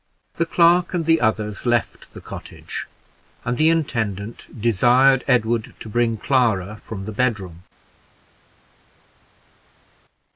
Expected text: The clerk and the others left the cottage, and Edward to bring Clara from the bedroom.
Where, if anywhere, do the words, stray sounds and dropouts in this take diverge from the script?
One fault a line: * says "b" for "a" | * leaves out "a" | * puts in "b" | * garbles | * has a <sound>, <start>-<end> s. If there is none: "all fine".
* puts in "the intendant desired"